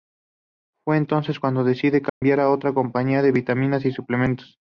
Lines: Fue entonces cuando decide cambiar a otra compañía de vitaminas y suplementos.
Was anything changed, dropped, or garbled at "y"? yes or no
no